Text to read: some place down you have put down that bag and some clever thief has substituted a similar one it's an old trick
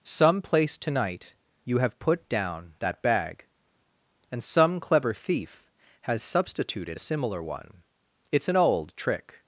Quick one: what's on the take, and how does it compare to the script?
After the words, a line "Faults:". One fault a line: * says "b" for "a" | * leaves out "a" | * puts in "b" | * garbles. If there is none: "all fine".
some place tonight you have put down that bag and some clever thief has substituted a similar one it's an old trick
Faults:
* says "tonight" for "down"